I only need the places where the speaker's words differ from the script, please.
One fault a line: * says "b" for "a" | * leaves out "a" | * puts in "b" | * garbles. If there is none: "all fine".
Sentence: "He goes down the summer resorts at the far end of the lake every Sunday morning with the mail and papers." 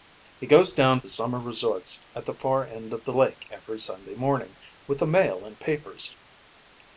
all fine